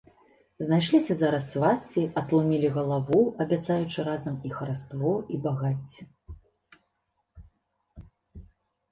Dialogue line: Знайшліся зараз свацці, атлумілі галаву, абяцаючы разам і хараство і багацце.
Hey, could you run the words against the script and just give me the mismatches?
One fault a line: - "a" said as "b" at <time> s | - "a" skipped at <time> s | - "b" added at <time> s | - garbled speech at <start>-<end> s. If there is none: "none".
none